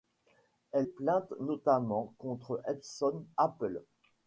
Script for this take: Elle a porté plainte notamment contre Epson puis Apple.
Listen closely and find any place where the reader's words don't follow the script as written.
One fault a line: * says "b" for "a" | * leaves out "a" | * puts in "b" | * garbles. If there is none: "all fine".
* leaves out "a porté"
* leaves out "puis"